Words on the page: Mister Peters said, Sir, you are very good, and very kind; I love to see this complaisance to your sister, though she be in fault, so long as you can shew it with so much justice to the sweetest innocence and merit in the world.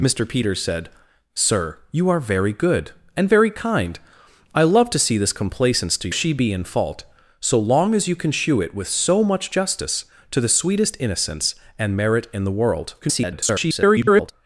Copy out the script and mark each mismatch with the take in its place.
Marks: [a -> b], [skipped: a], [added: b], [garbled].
Mister Peters said, Sir, you are very good, and very kind; I love to see this complaisance to [skipped: your sister, though] she be in fault, so long as you can shew it with so much justice to the sweetest innocence and merit in the world. [garbled]